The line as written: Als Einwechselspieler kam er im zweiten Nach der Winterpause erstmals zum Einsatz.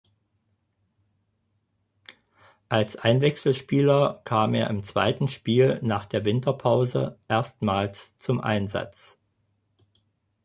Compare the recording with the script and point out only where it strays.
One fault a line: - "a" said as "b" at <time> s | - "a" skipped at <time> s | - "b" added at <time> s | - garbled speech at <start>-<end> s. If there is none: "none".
- "Spiel" added at 5.3 s